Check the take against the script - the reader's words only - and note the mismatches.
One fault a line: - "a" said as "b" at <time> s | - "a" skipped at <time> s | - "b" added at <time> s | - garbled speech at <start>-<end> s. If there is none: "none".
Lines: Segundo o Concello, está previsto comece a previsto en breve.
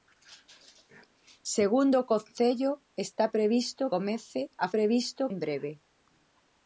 none